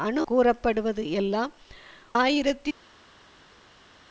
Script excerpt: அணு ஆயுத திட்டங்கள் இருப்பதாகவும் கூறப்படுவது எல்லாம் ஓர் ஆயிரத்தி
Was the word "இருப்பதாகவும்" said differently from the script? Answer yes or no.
yes